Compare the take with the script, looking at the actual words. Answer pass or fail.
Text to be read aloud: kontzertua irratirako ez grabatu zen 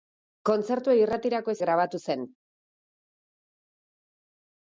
pass